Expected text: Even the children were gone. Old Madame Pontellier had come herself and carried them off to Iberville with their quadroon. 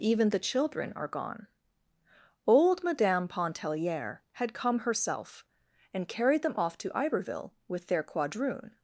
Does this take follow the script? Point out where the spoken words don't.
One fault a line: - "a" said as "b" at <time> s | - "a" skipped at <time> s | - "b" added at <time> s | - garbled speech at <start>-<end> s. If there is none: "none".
- "were" said as "are" at 1.0 s